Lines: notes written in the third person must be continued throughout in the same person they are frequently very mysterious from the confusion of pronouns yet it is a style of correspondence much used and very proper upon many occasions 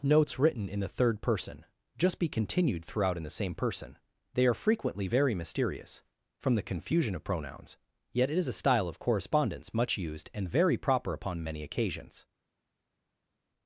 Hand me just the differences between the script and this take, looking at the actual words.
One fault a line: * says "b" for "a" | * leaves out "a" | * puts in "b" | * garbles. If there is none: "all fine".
* says "just" for "must"